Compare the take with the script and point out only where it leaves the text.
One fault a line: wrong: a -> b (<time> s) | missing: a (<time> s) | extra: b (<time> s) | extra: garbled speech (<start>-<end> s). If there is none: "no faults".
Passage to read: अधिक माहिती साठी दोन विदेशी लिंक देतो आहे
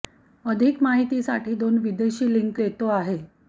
no faults